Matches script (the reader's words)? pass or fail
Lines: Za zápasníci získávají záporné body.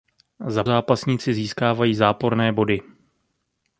pass